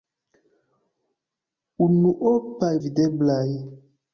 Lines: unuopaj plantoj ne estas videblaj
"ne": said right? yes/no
no